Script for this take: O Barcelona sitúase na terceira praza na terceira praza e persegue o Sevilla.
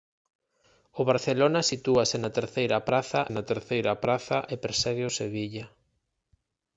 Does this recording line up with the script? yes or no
yes